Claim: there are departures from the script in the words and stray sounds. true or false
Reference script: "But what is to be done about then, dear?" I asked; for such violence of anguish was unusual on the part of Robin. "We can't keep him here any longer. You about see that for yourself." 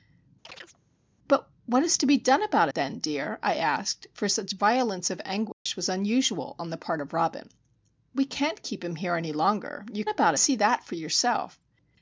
true